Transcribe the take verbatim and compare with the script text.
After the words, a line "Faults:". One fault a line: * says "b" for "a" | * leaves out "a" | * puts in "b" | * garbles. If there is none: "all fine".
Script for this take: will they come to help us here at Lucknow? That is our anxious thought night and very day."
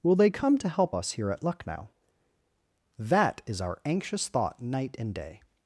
will they come to help us here at Lucknow? That is our anxious thought night and day."
Faults:
* leaves out "very"